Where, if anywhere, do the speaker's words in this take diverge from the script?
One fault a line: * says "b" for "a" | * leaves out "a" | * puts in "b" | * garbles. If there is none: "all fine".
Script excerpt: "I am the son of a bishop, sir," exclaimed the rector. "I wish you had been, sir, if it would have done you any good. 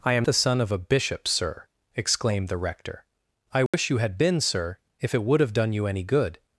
all fine